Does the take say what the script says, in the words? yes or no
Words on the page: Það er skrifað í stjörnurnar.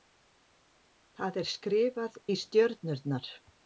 yes